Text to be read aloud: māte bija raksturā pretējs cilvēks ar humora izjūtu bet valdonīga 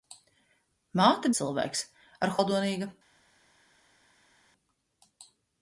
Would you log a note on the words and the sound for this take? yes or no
yes